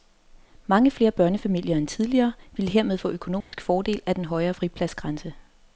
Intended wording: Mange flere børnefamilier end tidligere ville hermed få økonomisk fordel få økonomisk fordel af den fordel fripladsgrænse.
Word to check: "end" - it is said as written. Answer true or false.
true